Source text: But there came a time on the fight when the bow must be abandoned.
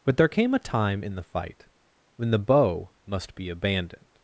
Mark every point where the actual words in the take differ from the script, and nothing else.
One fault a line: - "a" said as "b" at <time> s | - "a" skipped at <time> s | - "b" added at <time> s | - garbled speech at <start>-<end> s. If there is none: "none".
- "on" said as "in" at 1.0 s